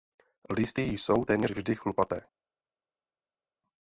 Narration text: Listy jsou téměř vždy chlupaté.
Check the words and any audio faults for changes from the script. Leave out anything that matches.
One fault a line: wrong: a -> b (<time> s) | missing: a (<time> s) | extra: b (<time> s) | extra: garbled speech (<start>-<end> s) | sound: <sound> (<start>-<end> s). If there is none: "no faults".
no faults